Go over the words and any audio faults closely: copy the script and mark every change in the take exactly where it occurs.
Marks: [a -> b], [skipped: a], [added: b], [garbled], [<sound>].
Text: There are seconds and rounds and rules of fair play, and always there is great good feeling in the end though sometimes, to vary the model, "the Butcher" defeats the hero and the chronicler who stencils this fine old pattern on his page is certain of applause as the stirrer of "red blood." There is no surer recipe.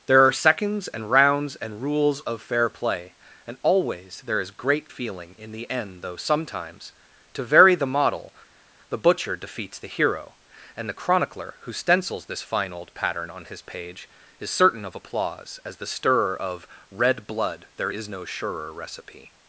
There are seconds and rounds and rules of fair play, and always there is great [skipped: good] feeling in the end though sometimes, to vary the model, "the Butcher" defeats the hero and the chronicler who stencils this fine old pattern on his page is certain of applause as the stirrer of "red blood." There is no surer recipe.